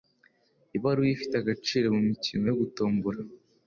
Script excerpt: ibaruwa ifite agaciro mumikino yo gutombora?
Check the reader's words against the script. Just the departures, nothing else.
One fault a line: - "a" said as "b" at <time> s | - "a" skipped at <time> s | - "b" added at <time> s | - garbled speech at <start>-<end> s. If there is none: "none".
none